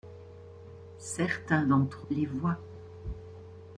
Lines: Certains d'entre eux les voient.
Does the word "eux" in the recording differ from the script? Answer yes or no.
yes